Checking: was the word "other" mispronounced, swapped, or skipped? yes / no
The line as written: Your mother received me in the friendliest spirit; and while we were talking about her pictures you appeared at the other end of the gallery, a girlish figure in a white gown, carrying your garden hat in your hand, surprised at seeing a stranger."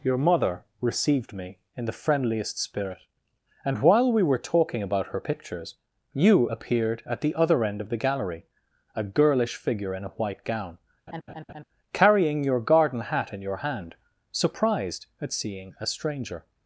no